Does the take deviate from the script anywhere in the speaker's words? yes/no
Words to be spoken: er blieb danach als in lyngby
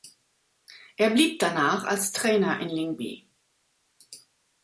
yes